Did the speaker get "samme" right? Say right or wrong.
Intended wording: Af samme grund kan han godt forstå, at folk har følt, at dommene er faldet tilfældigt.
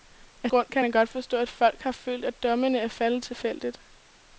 wrong